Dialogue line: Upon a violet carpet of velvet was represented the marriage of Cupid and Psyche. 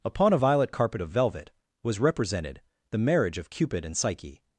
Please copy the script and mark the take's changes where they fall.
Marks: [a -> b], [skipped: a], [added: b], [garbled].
Upon a violet carpet of velvet was represented the marriage of Cupid and Psyche.